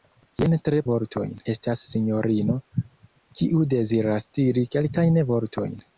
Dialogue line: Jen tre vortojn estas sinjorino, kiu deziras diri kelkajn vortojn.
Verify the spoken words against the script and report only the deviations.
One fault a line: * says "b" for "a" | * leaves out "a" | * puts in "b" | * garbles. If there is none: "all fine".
all fine